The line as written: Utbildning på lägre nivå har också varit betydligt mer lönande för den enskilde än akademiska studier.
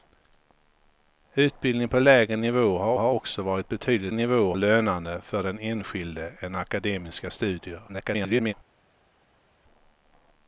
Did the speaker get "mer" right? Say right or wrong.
wrong